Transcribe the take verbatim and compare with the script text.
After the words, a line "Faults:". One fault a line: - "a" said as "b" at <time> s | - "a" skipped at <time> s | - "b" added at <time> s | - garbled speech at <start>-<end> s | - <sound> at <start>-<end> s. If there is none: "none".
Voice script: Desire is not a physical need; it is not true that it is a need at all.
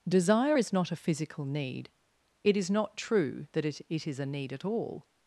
Desire is not a physical need; it is not true that it it is a need at all.
Faults:
- "it" added at 3.9 s